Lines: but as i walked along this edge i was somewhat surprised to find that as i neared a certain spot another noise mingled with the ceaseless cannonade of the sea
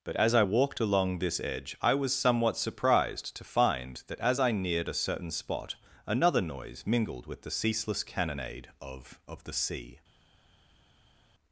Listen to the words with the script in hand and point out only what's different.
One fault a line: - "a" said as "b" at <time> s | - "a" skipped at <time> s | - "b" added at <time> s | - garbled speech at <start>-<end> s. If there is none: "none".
- "of" added at 9.3 s